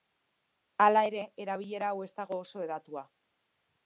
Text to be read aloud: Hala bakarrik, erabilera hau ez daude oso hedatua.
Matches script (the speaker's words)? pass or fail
fail